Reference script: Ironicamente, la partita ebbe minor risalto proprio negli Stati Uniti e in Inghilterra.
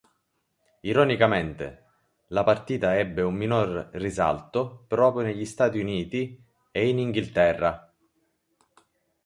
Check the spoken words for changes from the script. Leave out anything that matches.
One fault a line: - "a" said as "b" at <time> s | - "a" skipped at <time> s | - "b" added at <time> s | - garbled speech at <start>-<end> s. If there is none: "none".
- "un" added at 3.2 s